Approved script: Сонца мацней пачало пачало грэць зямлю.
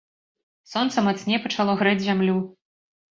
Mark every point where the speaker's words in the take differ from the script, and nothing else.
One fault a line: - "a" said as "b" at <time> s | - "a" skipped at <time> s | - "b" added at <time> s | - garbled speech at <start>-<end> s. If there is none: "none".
- "пачало" skipped at 1.8 s